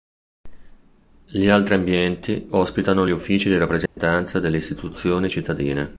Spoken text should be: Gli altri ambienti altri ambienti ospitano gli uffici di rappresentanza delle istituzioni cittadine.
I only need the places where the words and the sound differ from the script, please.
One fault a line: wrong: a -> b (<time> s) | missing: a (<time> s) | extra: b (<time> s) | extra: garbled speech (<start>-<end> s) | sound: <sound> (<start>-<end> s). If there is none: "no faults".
missing: altri ambienti (2.5 s)
sound: dropout (3.9-4.0 s)